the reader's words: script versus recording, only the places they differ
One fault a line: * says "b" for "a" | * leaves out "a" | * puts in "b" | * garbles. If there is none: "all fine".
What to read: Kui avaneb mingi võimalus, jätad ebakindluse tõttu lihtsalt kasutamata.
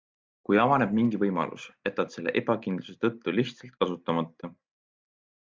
* puts in "selle"